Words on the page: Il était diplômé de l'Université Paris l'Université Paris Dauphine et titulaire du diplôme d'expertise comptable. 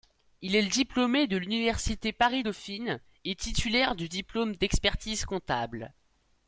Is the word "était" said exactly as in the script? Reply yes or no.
no